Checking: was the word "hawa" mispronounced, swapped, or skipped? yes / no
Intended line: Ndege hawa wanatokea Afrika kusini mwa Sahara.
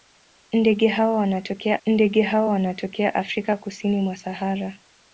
no